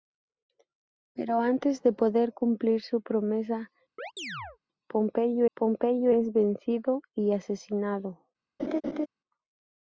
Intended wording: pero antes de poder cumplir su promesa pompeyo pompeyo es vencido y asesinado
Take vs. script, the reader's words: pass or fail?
pass